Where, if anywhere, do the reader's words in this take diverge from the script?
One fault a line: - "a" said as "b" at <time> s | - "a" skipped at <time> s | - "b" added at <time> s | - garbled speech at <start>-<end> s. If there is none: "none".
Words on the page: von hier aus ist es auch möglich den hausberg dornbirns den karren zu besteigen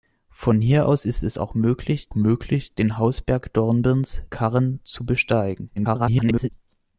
- "möglich" added at 2.1 s
- "den" skipped at 4.2 s
- garbled speech at 5.8-6.5 s